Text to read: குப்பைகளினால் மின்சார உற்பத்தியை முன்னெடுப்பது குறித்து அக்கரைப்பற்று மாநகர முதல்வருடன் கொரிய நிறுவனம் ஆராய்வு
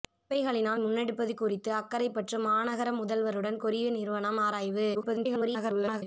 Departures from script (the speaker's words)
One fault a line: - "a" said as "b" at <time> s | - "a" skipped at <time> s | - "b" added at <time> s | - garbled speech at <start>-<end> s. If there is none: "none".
- "மின்சார உற்பத்தியை" skipped at 0.8 s
- garbled speech at 4.9-6.0 s